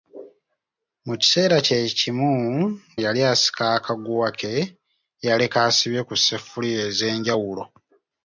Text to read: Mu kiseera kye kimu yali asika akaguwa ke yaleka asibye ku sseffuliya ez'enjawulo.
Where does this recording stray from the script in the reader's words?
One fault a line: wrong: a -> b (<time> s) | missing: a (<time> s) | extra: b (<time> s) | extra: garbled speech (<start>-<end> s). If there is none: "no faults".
no faults